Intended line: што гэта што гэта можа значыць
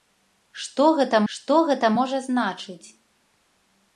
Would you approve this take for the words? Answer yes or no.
yes